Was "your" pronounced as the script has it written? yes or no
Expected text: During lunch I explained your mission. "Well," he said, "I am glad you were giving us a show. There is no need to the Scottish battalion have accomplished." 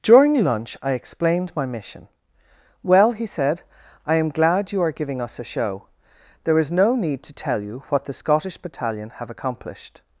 no